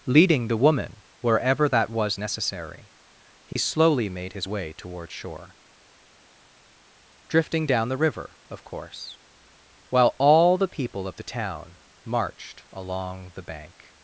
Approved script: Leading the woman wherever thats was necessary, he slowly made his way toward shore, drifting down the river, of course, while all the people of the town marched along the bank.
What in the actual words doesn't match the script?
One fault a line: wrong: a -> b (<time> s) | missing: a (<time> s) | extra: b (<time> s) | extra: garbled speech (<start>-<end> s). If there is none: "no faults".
wrong: thats -> that (1.7 s)